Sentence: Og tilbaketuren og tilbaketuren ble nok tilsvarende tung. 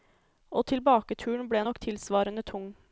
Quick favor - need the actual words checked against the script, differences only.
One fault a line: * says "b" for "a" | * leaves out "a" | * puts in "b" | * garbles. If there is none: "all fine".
* leaves out "og tilbaketuren"